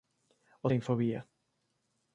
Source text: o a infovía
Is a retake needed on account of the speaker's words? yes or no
no